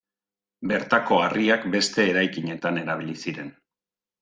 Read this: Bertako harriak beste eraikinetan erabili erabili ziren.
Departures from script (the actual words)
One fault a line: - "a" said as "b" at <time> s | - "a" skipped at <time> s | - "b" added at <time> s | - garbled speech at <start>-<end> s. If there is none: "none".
- "erabili" skipped at 3.2 s